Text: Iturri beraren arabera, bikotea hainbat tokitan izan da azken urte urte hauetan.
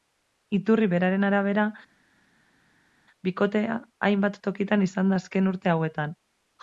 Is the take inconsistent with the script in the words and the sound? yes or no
yes